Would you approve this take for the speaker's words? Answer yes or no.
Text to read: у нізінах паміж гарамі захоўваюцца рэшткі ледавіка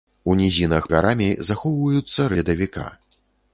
no